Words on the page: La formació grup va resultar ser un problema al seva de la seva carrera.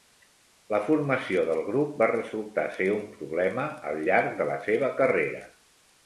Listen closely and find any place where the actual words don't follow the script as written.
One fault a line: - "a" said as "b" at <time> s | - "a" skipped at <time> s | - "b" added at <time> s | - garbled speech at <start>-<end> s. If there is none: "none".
- "del" added at 1.5 s
- "seva" said as "llarg" at 4.1 s